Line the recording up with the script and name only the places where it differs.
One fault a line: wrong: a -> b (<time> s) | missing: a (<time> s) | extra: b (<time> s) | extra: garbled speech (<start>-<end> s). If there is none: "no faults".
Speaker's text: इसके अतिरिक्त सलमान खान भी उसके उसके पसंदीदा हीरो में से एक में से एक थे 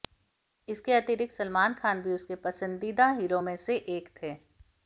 missing: उसके (2.4 s)
missing: में से एक (4.1 s)